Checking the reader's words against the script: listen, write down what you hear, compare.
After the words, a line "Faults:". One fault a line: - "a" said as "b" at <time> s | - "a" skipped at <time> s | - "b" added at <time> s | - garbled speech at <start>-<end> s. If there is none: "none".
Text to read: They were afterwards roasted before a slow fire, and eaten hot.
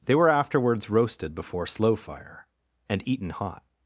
They were afterwards roasted before slow fire, and eaten hot.
Faults:
- "a" skipped at 1.7 s